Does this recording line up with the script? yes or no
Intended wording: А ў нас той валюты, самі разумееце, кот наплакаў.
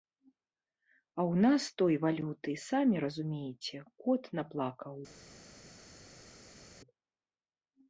yes